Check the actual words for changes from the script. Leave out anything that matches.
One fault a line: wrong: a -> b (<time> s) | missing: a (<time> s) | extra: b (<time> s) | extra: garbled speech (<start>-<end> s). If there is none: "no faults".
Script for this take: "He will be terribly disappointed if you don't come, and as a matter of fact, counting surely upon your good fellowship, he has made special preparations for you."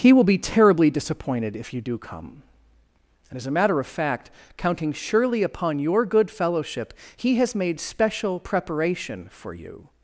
wrong: don't -> do (1.8 s)
wrong: preparations -> preparation (8.4 s)